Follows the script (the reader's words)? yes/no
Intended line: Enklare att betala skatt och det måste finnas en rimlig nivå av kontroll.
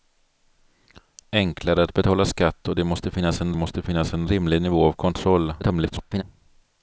no